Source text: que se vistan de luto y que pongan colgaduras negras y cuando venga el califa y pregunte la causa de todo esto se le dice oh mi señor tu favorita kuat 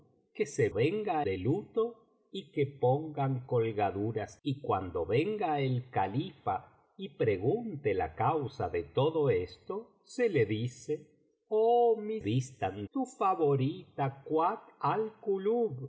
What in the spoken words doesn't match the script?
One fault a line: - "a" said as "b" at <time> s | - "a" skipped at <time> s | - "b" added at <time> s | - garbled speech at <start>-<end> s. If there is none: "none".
- "vistan" said as "venga" at 0.7 s
- "negras" skipped at 4.4 s
- "señor" said as "vistan" at 12.2 s